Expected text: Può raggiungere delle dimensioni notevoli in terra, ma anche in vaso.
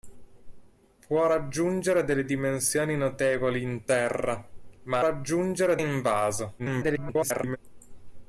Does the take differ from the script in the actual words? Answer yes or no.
yes